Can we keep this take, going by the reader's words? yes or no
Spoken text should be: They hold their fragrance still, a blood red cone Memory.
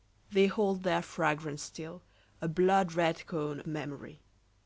yes